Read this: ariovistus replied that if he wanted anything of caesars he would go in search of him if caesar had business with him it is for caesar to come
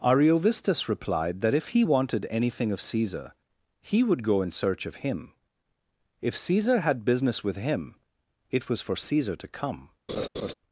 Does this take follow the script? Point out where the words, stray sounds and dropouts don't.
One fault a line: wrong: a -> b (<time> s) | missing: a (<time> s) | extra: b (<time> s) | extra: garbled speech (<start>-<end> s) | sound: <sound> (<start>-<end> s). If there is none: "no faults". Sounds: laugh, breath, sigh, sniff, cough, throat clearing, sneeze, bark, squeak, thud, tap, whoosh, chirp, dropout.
wrong: caesars -> caesar (2.8 s)
wrong: is -> was (8.7 s)
sound: laugh (10.1-10.5 s)